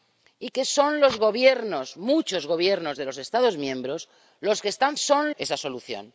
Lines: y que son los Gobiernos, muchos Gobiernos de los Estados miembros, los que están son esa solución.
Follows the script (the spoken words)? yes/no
yes